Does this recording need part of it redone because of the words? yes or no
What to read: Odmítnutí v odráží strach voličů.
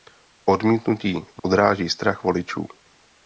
no